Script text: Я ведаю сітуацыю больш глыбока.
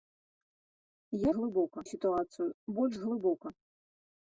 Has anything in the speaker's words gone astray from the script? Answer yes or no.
yes